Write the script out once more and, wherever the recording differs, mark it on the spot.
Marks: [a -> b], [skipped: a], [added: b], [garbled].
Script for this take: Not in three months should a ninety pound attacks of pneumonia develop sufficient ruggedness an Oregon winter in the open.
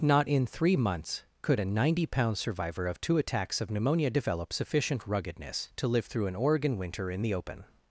Not in three months [should -> could] a ninety pound [added: survivor of two] attacks of pneumonia develop sufficient ruggedness [added: to live through] an Oregon winter in the open.